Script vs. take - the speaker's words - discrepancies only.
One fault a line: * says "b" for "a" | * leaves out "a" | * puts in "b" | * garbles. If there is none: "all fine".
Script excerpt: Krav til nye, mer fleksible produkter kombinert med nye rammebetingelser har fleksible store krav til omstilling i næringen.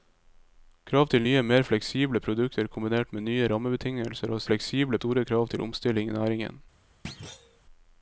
all fine